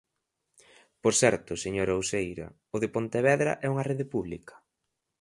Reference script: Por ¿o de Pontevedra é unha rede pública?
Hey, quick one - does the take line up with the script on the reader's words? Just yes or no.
no